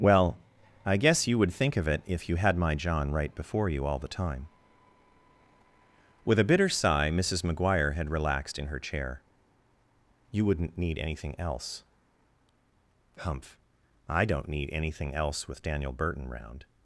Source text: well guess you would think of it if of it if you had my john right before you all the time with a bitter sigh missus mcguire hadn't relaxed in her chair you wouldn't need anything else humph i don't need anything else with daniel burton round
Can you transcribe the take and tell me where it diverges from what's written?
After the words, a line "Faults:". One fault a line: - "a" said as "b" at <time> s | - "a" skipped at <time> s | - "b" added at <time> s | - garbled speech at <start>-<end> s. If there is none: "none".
well i guess you would think of it if you had my john right before you all the time with a bitter sigh missus mcguire had relaxed in her chair you wouldn't need anything else humph i don't need anything else with daniel burton round
Faults:
- "i" added at 0.8 s
- "of it if" skipped at 2.3 s
- "hadn't" said as "had" at 7.9 s